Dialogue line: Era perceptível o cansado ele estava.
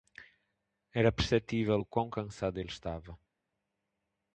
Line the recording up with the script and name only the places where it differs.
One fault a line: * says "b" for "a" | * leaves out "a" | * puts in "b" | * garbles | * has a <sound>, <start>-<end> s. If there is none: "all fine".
* puts in "quão"